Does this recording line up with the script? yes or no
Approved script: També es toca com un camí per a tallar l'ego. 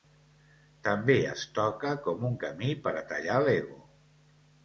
yes